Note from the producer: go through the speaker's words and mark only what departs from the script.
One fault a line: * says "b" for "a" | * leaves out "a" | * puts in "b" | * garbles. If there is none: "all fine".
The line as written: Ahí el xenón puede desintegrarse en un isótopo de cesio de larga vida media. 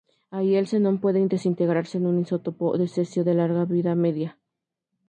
all fine